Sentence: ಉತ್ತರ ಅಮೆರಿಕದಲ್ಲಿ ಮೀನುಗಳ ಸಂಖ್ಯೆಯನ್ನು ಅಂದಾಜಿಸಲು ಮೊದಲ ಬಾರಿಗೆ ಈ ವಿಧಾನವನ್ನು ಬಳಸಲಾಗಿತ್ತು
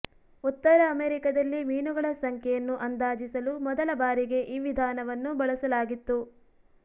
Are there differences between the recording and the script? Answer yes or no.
no